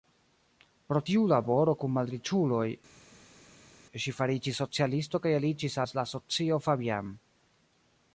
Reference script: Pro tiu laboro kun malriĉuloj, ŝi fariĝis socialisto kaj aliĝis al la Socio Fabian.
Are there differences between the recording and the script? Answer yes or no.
no